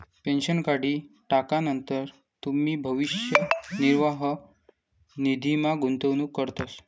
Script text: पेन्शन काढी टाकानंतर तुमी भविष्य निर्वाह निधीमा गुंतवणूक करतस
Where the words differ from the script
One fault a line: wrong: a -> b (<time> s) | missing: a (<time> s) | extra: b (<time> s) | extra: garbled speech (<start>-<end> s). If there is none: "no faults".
no faults